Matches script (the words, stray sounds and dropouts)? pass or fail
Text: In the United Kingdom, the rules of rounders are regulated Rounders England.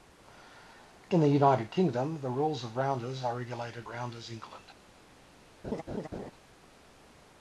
fail